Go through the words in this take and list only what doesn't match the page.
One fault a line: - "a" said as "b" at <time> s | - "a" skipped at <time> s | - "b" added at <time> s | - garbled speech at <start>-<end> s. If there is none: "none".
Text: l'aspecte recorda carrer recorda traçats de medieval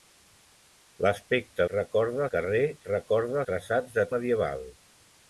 none